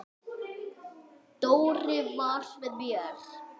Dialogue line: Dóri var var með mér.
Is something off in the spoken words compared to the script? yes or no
yes